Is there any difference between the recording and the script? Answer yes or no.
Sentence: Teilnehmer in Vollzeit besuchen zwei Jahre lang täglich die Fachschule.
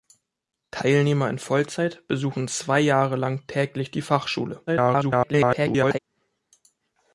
yes